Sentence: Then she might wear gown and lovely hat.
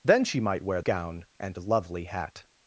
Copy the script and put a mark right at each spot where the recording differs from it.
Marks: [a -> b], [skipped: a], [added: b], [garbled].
Then she might wear gown and lovely hat.